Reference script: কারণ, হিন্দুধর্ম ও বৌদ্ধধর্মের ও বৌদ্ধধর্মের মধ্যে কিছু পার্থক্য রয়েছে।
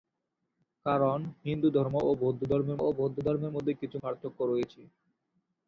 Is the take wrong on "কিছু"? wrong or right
right